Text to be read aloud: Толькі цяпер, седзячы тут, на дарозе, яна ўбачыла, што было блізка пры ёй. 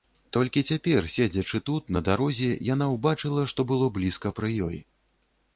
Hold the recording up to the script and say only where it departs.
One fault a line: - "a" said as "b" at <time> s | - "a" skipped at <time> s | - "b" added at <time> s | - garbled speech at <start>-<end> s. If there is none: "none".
none